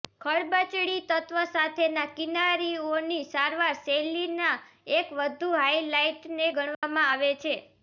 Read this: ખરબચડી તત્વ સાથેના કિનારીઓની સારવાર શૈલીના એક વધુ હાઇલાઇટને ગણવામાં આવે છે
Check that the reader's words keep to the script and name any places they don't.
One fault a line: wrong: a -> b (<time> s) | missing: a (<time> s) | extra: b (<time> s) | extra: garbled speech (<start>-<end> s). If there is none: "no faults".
no faults